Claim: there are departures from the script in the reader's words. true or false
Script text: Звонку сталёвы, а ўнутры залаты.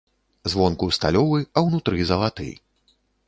false